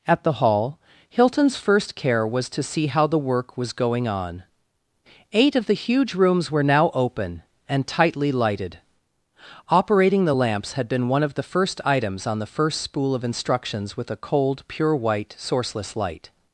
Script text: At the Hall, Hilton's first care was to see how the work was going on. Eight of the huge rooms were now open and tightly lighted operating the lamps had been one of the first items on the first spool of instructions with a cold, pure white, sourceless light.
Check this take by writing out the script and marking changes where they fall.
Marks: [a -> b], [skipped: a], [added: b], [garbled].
At the Hall, Hilton's first care was to see how the work was going on. Eight of the huge rooms were now open and tightly lighted operating the lamps had been one of the first items on the first spool of instructions with a cold, pure white, sourceless light.